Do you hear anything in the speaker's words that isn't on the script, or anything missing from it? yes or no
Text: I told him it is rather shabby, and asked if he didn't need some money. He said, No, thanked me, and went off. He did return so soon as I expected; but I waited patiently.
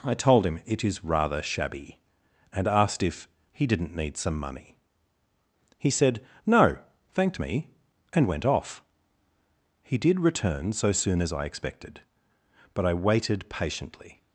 no